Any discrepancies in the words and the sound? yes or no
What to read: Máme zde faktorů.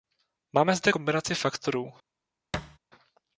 yes